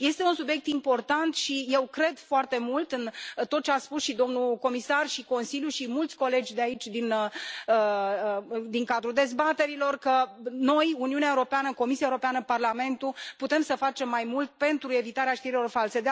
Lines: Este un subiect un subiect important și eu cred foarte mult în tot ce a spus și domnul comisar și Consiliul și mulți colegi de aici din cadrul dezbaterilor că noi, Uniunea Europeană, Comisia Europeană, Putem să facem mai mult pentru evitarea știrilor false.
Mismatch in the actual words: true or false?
true